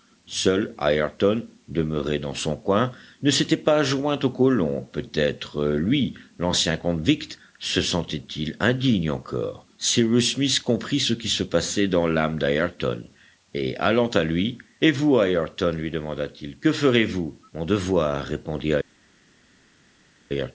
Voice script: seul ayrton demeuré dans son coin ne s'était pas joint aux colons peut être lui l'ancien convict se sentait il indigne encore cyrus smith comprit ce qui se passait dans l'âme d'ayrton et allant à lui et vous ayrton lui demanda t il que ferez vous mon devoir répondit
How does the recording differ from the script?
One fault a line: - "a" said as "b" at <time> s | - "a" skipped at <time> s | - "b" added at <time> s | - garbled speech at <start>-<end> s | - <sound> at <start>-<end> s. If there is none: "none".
none